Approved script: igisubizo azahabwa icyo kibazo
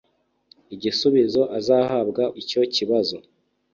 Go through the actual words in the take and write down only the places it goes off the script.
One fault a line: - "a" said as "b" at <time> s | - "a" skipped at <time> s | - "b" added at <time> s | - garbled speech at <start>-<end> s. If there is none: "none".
none